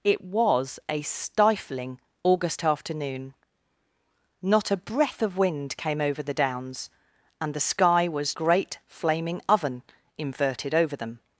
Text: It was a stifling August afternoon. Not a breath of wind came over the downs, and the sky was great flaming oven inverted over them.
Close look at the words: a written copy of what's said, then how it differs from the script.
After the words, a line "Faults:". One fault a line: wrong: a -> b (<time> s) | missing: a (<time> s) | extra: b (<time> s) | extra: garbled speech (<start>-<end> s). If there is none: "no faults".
It was a stifling August afternoon. Not a breath of wind came over the downs, and the sky was great flaming oven inverted over them.
Faults:
no faults